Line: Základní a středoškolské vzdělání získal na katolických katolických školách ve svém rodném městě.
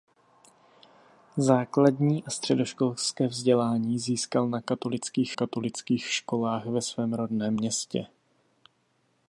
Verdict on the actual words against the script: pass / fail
pass